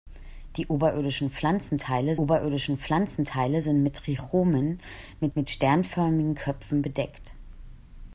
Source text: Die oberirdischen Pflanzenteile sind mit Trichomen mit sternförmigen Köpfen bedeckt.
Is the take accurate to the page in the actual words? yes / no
no